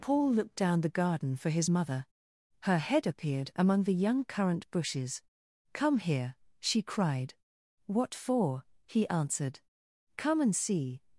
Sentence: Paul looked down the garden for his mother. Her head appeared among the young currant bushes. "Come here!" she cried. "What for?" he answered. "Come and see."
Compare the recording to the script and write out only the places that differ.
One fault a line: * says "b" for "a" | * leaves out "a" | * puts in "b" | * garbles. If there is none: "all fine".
all fine